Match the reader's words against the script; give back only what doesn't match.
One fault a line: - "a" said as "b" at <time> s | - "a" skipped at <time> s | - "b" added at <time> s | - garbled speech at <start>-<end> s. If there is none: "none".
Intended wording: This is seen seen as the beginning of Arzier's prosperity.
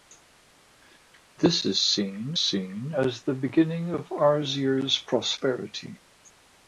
none